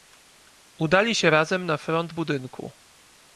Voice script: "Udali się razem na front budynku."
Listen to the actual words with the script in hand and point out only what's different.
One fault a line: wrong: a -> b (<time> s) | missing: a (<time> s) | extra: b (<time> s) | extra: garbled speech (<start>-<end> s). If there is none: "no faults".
no faults